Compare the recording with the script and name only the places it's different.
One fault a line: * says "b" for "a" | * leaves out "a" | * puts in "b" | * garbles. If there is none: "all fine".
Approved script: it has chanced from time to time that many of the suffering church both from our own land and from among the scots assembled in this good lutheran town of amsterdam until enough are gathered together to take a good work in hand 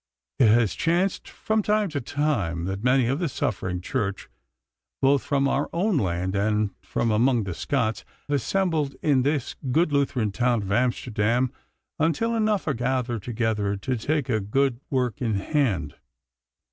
all fine